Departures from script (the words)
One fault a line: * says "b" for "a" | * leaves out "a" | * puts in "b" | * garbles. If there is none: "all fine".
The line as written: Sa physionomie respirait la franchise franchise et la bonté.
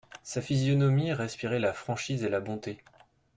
* leaves out "franchise"